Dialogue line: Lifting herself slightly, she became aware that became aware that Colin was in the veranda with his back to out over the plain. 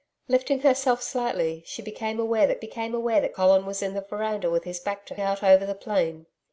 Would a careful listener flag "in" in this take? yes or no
no